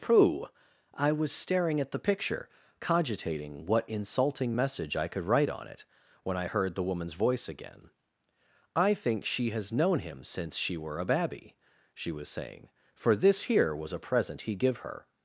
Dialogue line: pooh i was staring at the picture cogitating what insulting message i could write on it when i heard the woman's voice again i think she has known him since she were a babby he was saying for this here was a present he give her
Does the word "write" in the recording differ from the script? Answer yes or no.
no